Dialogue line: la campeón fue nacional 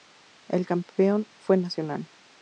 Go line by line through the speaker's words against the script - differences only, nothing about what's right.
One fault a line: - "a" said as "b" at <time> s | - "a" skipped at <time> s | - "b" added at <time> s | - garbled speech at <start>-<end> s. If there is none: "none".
- "la" said as "el" at 0.5 s